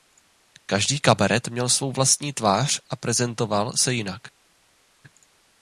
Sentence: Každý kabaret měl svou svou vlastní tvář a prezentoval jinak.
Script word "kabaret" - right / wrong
right